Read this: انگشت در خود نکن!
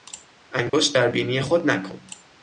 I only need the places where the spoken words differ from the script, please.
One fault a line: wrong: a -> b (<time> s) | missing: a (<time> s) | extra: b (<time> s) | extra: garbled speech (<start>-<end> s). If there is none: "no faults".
extra: بینی (1.1 s)